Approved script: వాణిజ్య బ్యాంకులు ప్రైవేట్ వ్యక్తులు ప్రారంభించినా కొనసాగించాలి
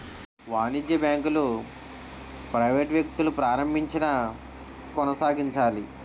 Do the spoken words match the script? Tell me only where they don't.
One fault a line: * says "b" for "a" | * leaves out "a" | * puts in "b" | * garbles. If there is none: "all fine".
all fine